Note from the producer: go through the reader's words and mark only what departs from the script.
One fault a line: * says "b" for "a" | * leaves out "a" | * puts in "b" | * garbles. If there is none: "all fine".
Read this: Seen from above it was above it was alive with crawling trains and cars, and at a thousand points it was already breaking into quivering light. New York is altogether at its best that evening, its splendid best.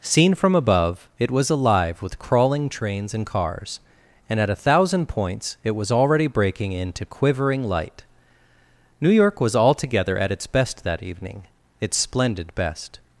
* leaves out "above it was"
* says "was" for "is"